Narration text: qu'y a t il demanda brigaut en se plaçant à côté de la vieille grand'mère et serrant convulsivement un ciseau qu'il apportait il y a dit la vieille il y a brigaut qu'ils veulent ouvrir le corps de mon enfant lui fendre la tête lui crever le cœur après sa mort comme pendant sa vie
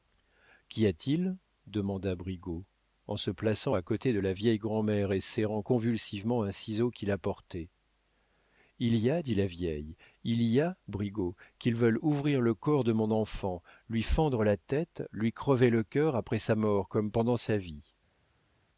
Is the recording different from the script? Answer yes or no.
no